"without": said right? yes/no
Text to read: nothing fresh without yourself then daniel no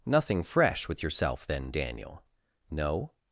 no